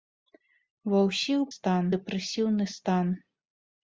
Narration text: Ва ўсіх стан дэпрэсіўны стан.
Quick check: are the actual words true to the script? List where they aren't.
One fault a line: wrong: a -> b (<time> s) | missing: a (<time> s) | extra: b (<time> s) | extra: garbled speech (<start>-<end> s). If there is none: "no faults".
no faults